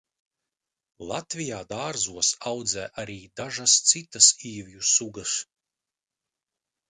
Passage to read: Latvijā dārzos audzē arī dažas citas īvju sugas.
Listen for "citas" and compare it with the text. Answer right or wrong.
right